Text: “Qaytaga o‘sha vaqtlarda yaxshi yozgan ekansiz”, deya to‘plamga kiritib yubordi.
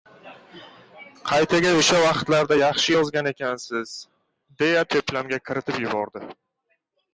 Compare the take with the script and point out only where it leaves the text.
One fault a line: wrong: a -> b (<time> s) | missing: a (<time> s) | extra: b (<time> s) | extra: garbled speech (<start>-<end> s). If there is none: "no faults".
no faults